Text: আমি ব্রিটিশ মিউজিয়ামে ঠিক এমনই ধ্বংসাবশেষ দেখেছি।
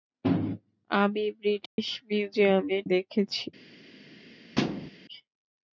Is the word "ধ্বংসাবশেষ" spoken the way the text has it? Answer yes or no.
no